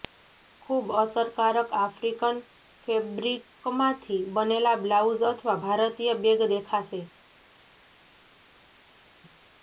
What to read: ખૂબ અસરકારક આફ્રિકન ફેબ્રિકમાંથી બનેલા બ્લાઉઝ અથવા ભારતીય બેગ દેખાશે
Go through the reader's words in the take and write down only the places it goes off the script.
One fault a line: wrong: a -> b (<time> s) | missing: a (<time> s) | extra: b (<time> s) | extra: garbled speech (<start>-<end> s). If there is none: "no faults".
no faults